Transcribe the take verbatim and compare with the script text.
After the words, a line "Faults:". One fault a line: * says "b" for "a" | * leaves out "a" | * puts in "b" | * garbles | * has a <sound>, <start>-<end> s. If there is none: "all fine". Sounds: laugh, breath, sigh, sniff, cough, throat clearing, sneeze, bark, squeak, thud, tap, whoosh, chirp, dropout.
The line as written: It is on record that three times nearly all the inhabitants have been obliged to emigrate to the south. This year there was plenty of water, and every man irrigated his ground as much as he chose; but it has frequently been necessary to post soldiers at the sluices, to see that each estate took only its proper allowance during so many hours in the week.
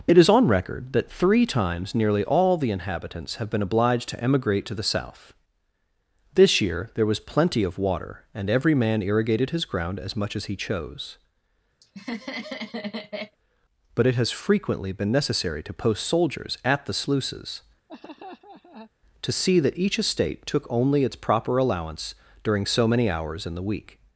It is on record that three times nearly all the inhabitants have been obliged to emigrate to the south. This year there was plenty of water, and every man irrigated his ground as much as he chose; but it has frequently been necessary to post soldiers at the sluices, to see that each estate took only its proper allowance during so many hours in the week.
Faults:
* has a laugh, 11.8-13.4 s
* has a laugh, 17.9-18.9 s